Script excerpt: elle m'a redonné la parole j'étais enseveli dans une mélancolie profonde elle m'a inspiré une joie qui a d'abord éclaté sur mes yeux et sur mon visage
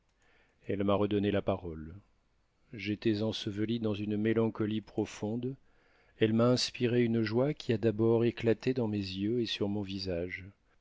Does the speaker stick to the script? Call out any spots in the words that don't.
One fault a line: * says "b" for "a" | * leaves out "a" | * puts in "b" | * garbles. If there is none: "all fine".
* says "dans" for "sur"